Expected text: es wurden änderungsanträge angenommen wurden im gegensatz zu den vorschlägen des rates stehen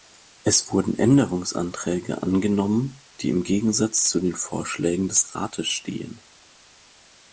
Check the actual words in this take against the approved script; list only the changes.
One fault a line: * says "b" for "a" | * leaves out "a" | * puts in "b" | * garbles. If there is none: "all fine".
* says "die" for "wurden"